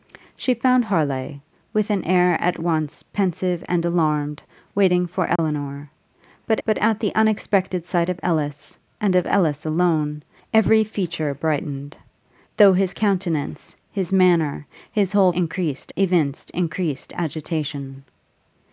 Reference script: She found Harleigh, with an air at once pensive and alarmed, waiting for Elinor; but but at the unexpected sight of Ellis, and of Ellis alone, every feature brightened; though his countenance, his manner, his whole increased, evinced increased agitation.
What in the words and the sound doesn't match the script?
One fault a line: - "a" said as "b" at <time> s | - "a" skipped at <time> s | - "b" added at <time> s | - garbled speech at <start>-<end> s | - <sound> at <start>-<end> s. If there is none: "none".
- dropout at 5.4-5.4 s